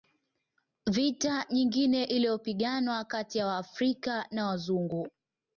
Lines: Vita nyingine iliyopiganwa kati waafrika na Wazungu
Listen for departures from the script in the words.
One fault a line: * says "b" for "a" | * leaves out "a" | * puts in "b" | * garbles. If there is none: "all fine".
* puts in "ya"